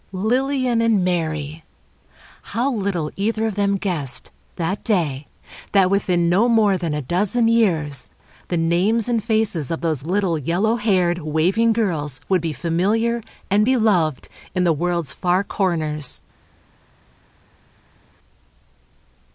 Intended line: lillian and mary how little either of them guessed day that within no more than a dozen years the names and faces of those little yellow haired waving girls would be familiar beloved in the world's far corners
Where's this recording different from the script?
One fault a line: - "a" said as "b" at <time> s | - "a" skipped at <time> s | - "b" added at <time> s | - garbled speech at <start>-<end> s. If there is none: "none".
- "that" added at 4.5 s
- "and" added at 13.5 s